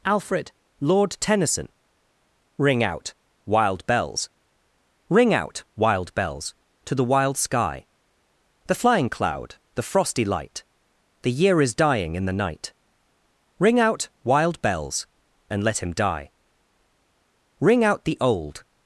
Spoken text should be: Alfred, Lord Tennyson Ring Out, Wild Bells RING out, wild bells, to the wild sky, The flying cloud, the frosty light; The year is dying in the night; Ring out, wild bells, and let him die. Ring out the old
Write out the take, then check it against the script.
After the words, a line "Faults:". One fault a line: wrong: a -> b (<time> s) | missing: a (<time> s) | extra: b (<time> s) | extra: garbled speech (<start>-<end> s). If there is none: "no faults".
Alfred, Lord Tennyson Ring Out, Wild Bells RING out, wild bells, to the wild sky, The flying cloud, the frosty light; The year is dying in the night; Ring out, wild bells, and let him die. Ring out the old
Faults:
no faults